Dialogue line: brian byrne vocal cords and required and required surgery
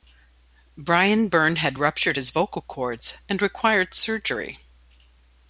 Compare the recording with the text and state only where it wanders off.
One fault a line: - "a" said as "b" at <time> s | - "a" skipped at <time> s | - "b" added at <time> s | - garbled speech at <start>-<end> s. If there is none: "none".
- "had ruptured his" added at 1.6 s
- "and required" skipped at 3.9 s